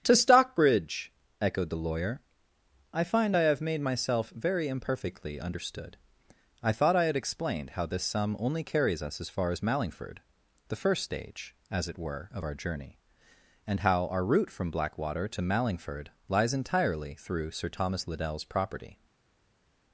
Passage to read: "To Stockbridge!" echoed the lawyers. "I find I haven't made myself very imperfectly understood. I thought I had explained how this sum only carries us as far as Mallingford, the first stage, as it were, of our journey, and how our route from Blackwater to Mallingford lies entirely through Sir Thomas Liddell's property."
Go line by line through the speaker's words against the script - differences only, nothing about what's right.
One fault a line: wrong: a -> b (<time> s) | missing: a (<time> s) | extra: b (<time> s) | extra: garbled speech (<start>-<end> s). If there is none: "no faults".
wrong: lawyers -> lawyer (1.8 s)
wrong: haven't -> have (3.4 s)